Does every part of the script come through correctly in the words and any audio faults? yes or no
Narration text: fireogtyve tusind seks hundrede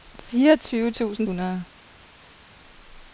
no